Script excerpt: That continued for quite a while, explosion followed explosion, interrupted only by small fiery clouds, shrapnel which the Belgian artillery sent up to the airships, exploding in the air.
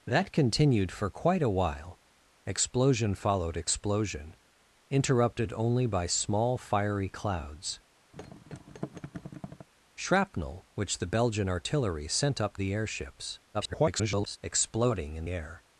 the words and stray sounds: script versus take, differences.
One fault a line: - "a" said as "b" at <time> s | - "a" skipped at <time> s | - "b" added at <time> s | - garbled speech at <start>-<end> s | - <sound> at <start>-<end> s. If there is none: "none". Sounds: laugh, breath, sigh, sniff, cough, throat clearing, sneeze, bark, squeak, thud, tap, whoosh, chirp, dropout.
- thud at 8.1-9.7 s
- "to" skipped at 12.6 s
- garbled speech at 13.5-14.4 s
- "the" skipped at 15.3 s